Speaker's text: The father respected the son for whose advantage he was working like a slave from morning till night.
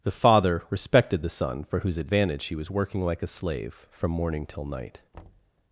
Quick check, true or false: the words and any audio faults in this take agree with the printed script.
false